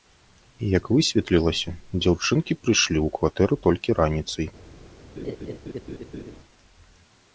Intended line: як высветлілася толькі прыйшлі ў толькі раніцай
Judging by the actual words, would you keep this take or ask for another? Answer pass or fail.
fail